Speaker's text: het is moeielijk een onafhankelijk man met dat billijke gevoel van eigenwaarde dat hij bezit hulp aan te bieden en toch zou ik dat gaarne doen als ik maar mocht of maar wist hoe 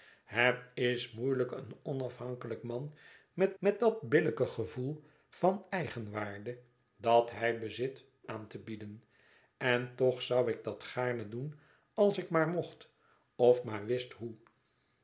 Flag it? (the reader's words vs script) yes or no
yes